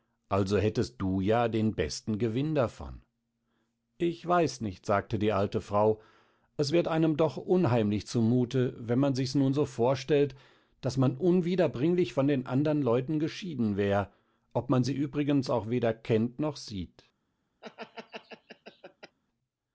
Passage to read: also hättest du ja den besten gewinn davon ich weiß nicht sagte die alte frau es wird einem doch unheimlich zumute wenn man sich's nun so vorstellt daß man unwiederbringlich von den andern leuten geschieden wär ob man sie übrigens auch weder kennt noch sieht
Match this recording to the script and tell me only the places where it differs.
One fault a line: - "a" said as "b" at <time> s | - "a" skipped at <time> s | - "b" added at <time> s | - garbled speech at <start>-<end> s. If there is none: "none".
none